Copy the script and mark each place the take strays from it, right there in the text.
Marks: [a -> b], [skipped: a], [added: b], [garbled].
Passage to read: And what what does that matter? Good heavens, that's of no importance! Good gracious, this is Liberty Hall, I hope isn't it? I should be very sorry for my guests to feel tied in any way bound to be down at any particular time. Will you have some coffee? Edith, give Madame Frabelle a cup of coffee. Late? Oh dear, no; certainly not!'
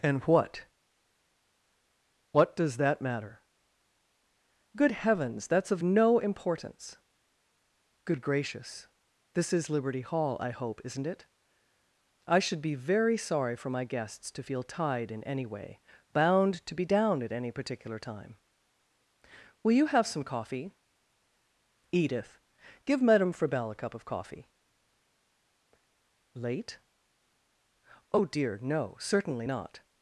And what what does that matter? Good heavens, that's of no importance! Good gracious, this is Liberty Hall, I hope isn't it? I should be very sorry for my guests to feel tied in any way bound to be down at any particular time. Will you have some coffee? Edith, give Madame Frabelle a cup of coffee. Late? Oh dear, no; certainly not!'